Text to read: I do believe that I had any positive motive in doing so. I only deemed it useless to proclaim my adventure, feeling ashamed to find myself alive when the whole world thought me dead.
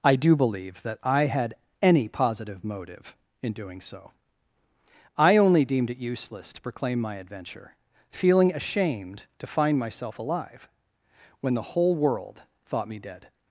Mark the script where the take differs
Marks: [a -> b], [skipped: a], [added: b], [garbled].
I do believe that I had any positive motive in doing so. I only deemed it useless to proclaim my adventure, feeling ashamed to find myself alive when the whole world thought me dead.